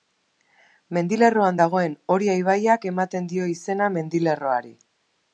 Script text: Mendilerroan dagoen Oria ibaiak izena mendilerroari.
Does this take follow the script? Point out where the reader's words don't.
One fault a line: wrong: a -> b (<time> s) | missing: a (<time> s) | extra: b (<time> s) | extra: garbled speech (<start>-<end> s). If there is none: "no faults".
extra: ematen dio (2.9 s)